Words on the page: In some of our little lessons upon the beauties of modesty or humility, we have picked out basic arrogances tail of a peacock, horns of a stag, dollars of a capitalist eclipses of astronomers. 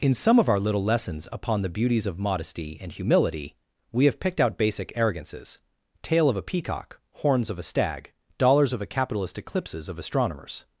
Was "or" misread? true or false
true